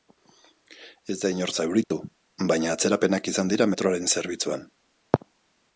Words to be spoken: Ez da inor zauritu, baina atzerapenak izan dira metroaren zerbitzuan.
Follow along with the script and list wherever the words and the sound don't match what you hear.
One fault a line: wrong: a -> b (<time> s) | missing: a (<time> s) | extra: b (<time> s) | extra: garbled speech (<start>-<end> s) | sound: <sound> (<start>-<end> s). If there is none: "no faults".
sound: dropout (1.8-1.9 s)